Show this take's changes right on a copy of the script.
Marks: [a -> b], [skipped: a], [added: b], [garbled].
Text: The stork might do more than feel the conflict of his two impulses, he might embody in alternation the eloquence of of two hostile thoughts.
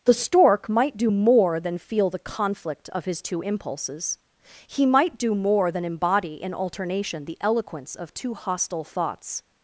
The stork might do more than feel the conflict of his two impulses, he might [added: do more than] embody in alternation the eloquence of [skipped: of] two hostile thoughts.